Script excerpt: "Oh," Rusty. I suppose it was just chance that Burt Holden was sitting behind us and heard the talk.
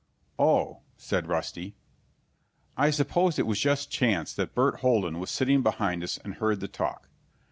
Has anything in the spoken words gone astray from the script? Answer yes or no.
yes